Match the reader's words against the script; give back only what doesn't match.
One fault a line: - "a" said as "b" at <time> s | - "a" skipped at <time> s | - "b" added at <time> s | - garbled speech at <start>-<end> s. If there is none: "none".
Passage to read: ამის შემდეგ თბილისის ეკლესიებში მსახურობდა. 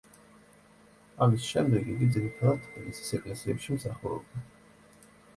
- "იგი ძირითადად" added at 1.9 s